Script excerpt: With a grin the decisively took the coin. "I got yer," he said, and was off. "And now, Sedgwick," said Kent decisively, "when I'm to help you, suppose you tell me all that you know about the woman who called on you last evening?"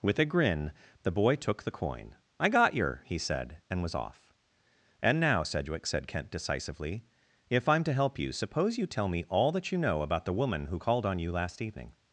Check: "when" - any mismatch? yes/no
yes